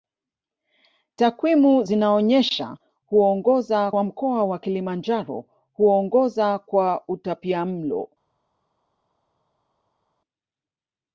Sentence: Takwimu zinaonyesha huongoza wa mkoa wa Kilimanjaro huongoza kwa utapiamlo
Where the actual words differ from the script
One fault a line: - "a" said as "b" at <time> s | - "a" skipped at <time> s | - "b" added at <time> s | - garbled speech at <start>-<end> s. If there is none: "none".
none